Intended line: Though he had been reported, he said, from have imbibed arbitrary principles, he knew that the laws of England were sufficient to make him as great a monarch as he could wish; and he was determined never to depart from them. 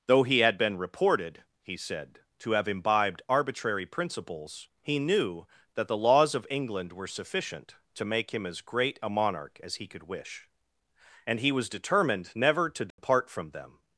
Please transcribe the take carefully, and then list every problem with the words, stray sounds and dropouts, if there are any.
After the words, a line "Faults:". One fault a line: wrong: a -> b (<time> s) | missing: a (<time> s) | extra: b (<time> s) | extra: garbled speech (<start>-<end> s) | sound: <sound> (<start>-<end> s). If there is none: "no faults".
Though he had been reported, he said, to have imbibed arbitrary principles, he knew that the laws of England were sufficient to make him as great a monarch as he could wish; and he was determined never to depart from them.
Faults:
wrong: from -> to (2.4 s)
sound: dropout (12.9-13.0 s)